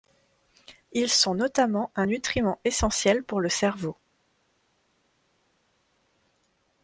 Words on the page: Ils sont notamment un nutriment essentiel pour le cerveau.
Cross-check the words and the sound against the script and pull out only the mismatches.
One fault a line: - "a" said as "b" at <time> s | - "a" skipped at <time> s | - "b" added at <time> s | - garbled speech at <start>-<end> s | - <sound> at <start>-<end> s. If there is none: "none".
none